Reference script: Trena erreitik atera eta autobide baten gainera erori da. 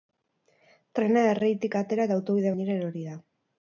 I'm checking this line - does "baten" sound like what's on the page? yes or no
no